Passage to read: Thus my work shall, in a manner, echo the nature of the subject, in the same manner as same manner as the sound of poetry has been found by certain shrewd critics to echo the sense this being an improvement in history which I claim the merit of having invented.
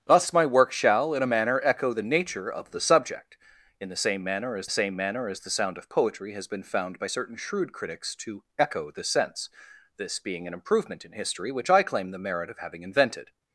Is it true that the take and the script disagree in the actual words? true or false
false